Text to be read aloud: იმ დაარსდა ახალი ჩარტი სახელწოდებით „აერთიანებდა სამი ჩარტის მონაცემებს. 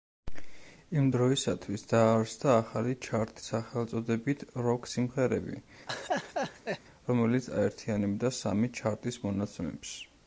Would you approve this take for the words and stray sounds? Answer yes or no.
no